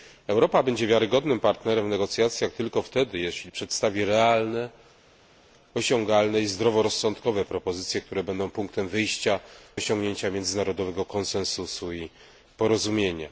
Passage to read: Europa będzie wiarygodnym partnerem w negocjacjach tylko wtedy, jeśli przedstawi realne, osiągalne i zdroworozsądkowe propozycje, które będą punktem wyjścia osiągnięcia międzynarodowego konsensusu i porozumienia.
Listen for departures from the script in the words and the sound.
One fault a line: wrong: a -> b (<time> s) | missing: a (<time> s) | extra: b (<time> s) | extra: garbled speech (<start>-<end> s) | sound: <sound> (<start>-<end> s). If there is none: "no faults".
no faults